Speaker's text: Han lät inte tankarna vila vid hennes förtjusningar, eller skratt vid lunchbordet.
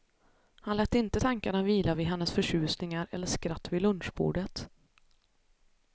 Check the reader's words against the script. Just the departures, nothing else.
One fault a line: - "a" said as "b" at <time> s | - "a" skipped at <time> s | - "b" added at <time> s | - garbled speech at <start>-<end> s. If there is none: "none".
none